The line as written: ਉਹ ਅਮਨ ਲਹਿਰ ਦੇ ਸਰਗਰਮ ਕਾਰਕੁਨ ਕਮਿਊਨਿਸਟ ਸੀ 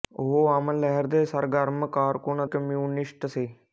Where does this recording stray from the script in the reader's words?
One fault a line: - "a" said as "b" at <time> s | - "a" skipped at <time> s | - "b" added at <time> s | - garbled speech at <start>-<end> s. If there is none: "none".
none